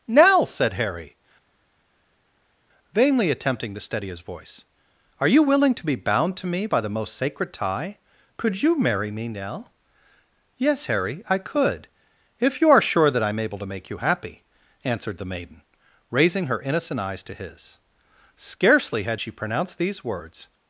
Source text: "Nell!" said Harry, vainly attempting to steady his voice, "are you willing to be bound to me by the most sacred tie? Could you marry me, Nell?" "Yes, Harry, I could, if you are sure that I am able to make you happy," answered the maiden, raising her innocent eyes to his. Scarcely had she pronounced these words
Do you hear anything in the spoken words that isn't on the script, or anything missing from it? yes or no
no